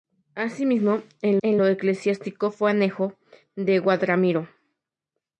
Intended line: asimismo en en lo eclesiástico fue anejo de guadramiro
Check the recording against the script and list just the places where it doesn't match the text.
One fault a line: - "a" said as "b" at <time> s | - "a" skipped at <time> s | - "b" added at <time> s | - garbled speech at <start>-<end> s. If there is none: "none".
none